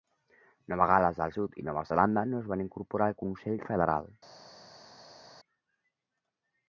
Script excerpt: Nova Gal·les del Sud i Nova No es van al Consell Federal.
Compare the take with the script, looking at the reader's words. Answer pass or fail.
fail